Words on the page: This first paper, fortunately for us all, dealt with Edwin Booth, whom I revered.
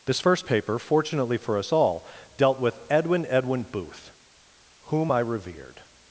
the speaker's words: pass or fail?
fail